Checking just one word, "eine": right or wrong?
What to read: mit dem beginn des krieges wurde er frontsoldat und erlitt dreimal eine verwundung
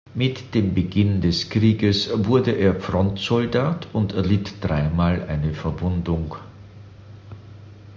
right